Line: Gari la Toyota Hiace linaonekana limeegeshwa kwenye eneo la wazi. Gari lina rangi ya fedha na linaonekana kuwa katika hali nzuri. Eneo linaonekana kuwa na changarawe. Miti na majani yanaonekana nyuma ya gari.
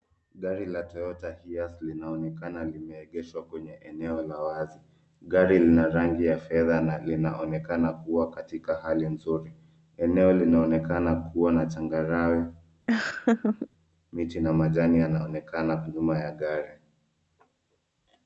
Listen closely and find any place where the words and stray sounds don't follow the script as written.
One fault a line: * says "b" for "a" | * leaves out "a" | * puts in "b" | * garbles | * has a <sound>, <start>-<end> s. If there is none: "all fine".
* has a laugh, 12.9-13.7 s